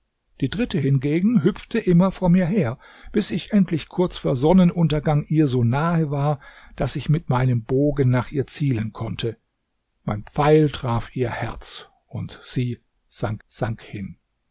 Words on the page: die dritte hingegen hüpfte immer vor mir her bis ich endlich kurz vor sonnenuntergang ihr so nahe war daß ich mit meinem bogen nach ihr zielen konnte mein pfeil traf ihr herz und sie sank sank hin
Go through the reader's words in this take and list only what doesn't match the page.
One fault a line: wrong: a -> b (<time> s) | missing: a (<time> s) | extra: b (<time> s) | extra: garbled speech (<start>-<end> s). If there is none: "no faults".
no faults